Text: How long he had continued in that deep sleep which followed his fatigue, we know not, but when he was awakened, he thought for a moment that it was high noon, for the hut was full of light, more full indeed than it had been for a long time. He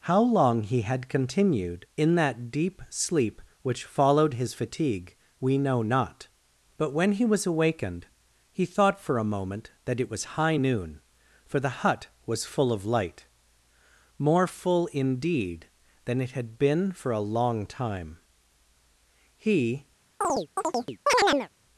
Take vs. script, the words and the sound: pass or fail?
fail